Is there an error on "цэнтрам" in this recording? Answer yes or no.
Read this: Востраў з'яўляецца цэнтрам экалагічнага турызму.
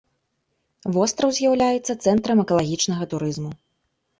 no